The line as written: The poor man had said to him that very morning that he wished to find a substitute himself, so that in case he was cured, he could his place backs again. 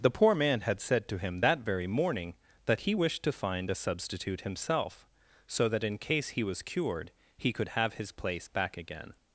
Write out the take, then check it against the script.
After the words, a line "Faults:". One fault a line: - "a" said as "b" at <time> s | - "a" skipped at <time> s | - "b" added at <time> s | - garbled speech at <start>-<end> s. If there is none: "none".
The poor man had said to him that very morning that he wished to find a substitute himself, so that in case he was cured, he could have his place back again.
Faults:
- "have" added at 7.7 s
- "backs" said as "back" at 8.5 s